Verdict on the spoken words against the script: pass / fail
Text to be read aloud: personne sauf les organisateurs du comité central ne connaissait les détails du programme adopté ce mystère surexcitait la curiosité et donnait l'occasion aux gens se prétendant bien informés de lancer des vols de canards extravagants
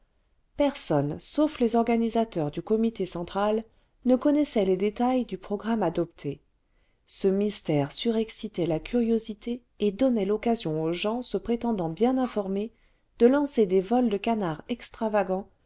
pass